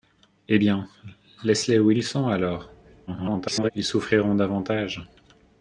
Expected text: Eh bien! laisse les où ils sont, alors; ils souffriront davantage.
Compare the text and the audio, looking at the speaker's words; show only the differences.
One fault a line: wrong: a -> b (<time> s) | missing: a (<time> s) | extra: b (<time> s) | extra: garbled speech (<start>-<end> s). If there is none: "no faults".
extra: garbled speech (3.1-3.7 s)